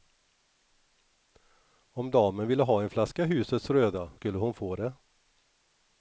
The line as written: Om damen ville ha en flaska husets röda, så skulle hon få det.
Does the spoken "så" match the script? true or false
false